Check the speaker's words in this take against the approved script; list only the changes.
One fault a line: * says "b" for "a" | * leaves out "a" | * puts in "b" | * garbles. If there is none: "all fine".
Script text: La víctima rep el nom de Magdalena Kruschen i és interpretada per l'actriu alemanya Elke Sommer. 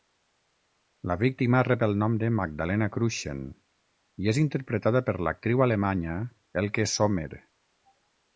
all fine